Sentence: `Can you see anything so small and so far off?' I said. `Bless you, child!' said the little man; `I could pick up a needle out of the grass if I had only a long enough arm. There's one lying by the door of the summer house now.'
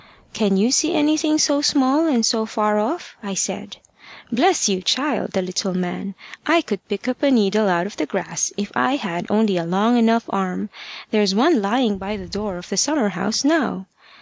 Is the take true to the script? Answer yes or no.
no